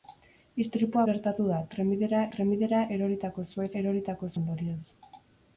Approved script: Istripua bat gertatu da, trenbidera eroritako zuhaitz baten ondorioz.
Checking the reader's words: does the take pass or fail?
fail